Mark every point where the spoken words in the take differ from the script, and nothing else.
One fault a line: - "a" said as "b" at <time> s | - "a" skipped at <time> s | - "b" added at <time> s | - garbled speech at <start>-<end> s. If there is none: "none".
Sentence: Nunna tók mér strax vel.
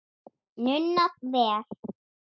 - "tók mér strax" skipped at 1.1 s